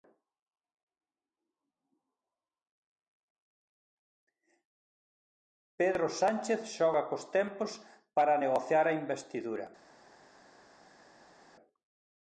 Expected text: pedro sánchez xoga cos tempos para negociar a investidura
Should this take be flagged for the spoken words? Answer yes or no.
no